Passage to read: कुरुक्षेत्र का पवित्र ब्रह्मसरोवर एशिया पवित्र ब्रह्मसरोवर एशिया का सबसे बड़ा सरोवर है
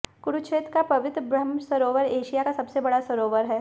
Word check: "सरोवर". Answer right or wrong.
right